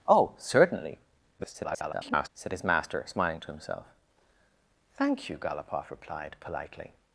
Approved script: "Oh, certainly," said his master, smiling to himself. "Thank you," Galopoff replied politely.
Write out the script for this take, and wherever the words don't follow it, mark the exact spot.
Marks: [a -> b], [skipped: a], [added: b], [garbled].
"Oh, certainly," [garbled] said his master, smiling to himself. "Thank you," Galopoff replied politely.